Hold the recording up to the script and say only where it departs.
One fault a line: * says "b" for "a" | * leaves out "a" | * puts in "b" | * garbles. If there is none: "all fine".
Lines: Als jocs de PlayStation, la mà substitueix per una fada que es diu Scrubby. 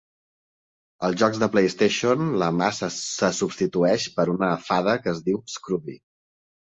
* puts in "se"